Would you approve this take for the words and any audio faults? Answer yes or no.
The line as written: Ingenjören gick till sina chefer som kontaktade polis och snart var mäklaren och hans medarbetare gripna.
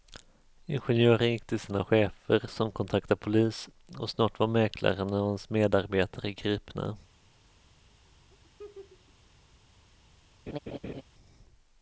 no